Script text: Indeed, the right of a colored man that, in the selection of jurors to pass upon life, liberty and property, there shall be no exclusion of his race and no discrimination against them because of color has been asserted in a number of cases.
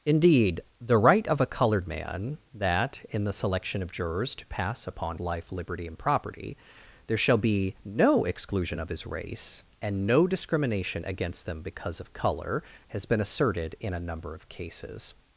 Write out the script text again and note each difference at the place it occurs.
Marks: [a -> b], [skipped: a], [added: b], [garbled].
Indeed, the right of a colored man that, in the selection of jurors to pass upon life, liberty and property, there shall be no exclusion of his race and no discrimination against them because of color has been asserted in a number of cases.